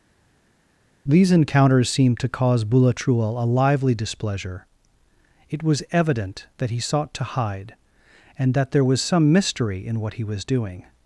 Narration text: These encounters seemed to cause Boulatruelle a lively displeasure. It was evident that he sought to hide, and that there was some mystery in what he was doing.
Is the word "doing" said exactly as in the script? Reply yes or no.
yes